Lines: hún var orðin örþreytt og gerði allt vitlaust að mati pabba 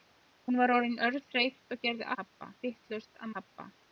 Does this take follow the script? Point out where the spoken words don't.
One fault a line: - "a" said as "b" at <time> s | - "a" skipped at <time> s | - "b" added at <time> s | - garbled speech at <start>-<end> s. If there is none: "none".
- "allt" said as "pabba" at 2.2 s
- "mati" skipped at 3.3 s